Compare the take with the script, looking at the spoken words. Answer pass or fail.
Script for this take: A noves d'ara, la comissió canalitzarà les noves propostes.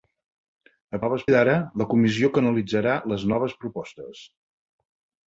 pass